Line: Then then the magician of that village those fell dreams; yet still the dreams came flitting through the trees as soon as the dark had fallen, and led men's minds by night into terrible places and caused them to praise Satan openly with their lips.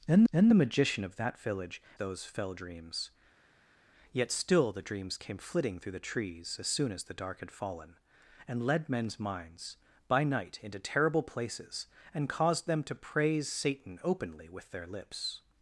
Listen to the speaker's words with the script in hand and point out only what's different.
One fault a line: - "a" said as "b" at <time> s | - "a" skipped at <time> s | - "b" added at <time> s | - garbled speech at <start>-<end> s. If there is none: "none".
none